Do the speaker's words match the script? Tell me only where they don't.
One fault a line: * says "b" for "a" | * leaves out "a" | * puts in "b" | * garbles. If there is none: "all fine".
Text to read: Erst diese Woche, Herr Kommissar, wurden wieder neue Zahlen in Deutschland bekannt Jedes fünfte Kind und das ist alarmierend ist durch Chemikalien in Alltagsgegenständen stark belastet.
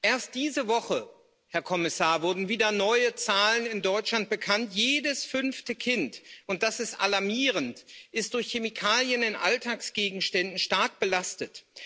all fine